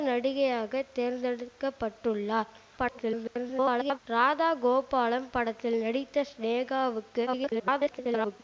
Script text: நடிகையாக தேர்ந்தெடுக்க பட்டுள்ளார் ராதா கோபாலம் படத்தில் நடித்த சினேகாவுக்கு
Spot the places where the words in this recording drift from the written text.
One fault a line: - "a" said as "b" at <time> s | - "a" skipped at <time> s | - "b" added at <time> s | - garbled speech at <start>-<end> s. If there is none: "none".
- garbled speech at 2.8-4.0 s
- garbled speech at 7.3-8.4 s